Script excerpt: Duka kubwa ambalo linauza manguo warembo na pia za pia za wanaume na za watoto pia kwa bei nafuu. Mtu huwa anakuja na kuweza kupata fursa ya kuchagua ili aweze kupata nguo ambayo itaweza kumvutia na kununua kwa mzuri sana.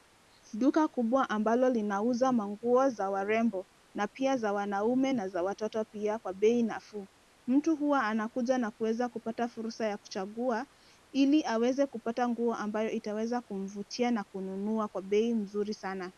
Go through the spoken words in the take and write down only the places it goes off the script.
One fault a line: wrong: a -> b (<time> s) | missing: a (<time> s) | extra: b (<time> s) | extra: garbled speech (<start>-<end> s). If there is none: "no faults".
extra: za (2.9 s)
missing: pia za (4.5 s)
extra: bei (15.0 s)